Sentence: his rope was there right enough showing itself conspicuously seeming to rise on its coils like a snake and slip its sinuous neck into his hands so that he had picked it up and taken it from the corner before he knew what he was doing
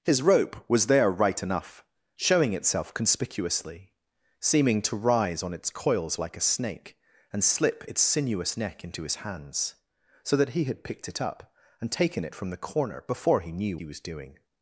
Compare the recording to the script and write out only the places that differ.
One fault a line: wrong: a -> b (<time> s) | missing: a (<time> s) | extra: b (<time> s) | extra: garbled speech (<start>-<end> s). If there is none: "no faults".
missing: what (13.8 s)